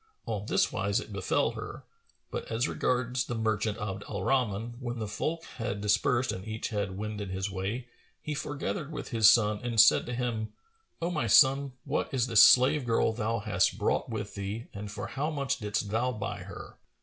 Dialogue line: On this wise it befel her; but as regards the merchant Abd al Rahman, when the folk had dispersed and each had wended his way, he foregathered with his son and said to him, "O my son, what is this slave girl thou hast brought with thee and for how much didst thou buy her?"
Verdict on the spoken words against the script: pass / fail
pass